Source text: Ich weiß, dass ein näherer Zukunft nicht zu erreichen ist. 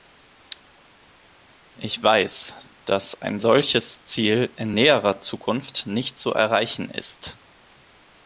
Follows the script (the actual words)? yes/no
no